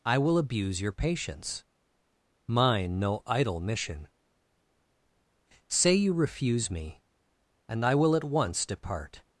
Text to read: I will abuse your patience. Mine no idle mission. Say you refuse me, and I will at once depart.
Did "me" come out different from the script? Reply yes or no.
no